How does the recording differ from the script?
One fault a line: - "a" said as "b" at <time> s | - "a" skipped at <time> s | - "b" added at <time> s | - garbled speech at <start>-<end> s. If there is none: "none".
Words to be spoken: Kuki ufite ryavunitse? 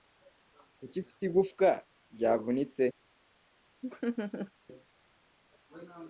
- "igufwa" added at 1.3 s